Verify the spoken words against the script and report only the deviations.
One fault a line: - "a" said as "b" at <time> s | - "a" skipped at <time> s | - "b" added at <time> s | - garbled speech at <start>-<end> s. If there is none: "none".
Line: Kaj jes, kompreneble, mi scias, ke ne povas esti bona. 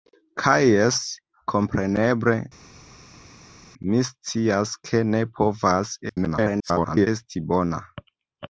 - garbled speech at 6.1-7.1 s